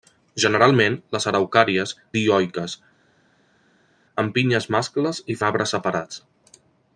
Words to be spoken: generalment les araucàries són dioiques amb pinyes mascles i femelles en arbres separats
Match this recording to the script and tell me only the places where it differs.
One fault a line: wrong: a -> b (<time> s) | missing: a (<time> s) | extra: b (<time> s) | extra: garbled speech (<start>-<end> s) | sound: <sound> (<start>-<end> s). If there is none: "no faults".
missing: són (1.9 s)
missing: femelles (5.4 s)